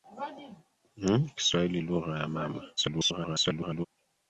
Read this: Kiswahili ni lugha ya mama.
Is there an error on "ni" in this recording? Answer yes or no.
yes